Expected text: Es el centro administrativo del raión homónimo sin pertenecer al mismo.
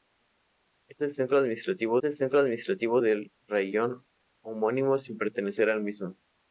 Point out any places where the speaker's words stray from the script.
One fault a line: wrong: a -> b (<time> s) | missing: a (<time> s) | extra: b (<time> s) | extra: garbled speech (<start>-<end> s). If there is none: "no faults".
extra: el centro administrativo (2.0 s)